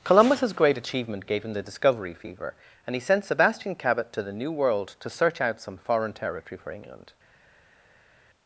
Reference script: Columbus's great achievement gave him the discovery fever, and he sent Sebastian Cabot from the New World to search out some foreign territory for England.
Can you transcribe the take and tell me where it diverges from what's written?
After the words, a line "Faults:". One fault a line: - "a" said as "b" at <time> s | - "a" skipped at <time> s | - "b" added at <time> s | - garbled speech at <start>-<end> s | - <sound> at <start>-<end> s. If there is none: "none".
Columbus's great achievement gave him the discovery fever, and he sent Sebastian Cabot to the New World to search out some foreign territory for England.
Faults:
- "from" said as "to" at 4.1 s